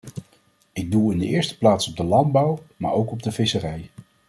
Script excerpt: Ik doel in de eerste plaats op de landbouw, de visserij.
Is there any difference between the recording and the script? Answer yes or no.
yes